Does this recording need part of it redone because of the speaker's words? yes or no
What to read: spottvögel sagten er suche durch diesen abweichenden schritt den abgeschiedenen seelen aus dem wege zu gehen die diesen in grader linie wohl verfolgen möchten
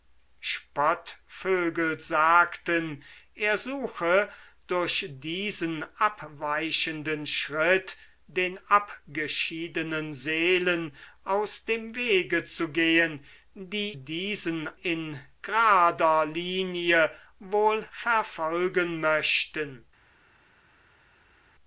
no